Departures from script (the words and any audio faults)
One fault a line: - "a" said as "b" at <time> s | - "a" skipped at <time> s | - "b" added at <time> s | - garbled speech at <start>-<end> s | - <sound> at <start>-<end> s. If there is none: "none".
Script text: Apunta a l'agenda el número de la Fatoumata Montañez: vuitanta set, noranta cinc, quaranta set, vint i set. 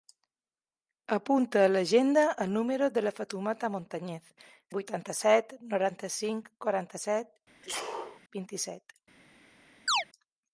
- sneeze at 7.6-8.2 s
- chirp at 9.9-10.0 s